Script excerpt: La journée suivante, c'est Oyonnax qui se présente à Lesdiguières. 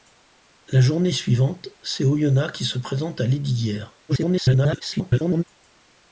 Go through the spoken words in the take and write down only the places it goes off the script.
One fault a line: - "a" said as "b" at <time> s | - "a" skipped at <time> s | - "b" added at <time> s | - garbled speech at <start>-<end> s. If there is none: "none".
- garbled speech at 4.1-5.4 s